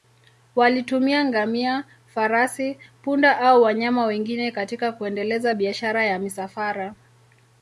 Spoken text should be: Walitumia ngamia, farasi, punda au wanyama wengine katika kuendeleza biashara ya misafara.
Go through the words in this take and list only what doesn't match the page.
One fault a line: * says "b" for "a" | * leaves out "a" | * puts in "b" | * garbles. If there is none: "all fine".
all fine